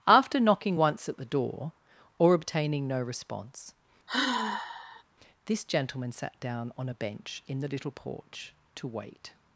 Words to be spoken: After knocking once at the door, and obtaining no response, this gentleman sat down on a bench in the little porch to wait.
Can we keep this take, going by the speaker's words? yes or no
no